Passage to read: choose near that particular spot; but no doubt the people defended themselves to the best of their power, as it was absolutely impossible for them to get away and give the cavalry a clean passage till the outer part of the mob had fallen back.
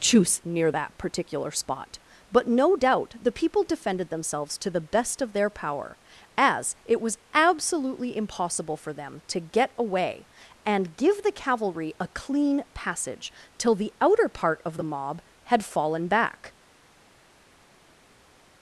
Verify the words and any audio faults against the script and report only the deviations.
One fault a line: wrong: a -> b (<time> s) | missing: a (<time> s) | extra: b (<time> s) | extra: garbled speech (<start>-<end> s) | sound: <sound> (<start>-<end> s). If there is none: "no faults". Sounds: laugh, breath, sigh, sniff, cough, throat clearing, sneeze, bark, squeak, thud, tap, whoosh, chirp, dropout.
no faults